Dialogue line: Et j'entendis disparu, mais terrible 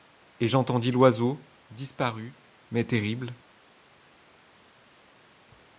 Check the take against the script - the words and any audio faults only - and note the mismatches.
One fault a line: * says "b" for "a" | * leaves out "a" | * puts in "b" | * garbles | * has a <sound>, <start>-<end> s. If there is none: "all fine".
* puts in "l'oiseau"